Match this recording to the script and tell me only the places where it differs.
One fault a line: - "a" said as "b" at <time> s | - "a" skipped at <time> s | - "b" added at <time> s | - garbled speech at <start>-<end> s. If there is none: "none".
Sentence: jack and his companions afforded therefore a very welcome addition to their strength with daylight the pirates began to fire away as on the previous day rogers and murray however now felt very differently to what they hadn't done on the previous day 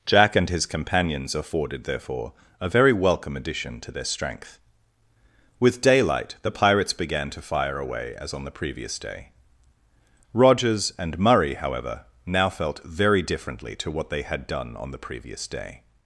- "hadn't" said as "had" at 14.2 s